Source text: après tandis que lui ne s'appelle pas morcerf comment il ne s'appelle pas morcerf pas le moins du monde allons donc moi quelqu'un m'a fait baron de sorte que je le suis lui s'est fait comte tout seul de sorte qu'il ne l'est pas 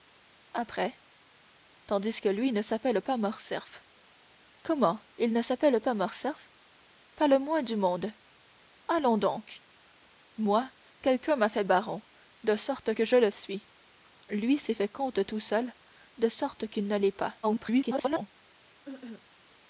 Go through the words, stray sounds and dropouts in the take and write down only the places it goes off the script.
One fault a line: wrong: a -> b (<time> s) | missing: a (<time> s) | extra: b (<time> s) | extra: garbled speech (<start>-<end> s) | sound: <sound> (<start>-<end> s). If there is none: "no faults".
extra: garbled speech (17.4-18.3 s)
sound: cough (18.9-19.3 s)